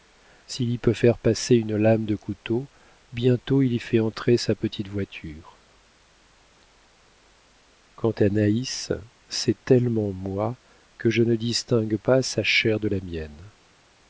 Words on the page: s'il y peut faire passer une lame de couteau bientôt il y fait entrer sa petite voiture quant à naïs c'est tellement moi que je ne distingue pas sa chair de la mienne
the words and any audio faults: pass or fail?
pass